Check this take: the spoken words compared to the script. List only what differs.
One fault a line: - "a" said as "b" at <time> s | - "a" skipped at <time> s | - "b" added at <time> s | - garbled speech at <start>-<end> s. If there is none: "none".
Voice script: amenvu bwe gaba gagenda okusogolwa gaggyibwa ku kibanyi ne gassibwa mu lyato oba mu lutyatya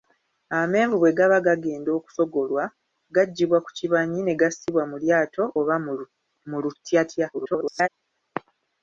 - garbled speech at 7.3-7.9 s